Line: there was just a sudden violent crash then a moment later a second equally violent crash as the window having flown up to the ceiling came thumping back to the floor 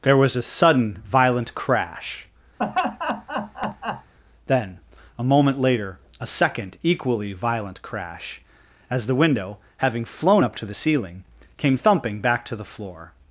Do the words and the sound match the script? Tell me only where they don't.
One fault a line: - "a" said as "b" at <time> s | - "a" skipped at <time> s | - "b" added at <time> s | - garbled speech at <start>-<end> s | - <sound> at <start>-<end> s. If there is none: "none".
- "just" skipped at 0.3 s
- laugh at 2.6-4.1 s